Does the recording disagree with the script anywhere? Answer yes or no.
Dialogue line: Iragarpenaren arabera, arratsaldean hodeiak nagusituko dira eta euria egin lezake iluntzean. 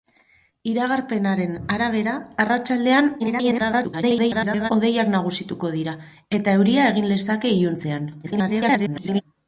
yes